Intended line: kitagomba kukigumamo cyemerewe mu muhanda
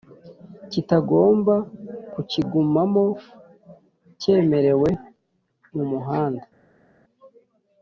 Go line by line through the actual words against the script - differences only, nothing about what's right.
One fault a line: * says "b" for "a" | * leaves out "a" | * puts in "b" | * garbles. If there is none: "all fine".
all fine